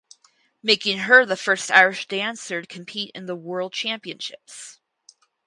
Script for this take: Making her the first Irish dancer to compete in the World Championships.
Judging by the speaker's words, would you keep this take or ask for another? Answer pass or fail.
pass